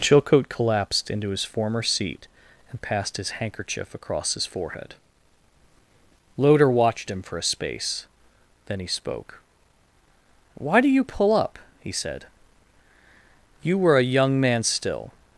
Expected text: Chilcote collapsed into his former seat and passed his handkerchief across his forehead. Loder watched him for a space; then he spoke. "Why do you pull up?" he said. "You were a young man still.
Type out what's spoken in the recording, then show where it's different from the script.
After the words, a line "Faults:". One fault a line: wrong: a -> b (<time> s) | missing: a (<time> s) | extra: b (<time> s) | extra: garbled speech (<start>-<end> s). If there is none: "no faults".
Chilcote collapsed into his former seat and passed his handkerchief across his forehead. Loder watched him for a space; then he spoke. "Why do you pull up?" he said. "You were a young man still.
Faults:
no faults